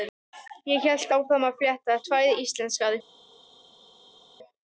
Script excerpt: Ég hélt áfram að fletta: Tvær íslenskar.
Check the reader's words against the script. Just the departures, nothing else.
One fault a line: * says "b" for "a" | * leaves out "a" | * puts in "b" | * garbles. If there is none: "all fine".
all fine